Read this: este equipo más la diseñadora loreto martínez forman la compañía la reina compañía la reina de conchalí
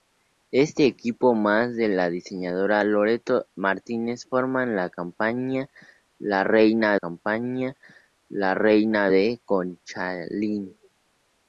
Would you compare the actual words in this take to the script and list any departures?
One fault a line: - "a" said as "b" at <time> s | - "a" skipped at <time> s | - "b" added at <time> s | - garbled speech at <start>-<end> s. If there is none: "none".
none